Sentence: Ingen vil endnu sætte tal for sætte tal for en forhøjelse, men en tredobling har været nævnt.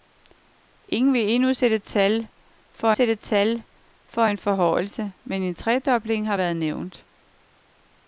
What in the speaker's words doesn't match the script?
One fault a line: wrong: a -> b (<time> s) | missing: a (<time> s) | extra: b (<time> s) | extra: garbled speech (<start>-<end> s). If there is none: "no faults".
no faults